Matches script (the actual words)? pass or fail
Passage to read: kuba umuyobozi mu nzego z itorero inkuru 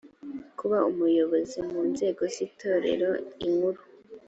pass